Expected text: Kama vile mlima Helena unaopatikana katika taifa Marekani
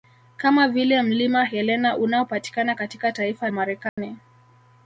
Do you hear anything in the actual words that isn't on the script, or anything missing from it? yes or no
no